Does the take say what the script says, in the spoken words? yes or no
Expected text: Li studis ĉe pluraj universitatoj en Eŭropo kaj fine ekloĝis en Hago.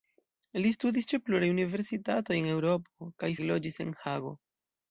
no